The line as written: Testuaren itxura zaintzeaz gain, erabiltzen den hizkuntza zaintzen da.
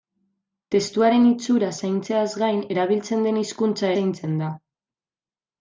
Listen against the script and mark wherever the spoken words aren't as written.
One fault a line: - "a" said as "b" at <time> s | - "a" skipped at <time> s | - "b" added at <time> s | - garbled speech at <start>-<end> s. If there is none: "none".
none